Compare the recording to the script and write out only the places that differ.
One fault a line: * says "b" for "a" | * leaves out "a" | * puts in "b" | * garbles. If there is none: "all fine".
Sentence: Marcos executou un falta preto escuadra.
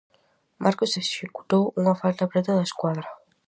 * says "unha" for "un"
* puts in "da"